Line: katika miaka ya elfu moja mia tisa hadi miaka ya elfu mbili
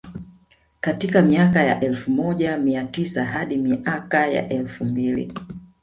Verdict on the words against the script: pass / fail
pass